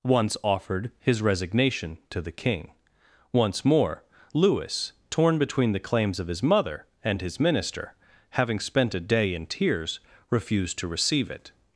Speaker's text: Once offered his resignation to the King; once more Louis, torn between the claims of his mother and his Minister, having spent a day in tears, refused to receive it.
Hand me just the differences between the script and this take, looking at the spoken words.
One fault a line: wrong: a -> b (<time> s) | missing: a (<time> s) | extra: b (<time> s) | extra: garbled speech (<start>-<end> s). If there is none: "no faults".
no faults